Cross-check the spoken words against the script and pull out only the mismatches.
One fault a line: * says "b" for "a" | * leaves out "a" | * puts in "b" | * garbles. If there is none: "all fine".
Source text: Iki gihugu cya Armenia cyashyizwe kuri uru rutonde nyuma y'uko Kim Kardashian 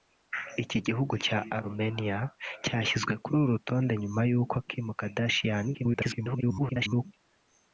* garbles